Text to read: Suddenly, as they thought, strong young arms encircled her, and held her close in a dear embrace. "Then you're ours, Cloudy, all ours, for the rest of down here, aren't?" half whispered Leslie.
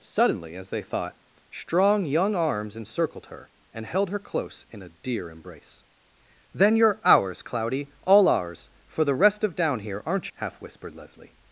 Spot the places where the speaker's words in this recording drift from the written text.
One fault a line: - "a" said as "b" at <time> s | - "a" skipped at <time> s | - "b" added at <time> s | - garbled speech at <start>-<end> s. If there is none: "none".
none